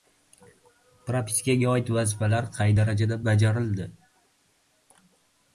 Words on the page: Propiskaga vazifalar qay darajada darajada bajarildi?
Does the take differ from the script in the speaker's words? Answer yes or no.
yes